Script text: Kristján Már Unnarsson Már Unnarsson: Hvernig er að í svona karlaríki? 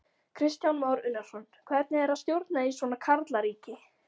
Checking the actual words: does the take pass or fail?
fail